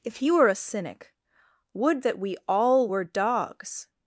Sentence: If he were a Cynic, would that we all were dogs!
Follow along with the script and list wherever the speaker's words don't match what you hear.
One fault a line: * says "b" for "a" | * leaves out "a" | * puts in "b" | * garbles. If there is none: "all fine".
all fine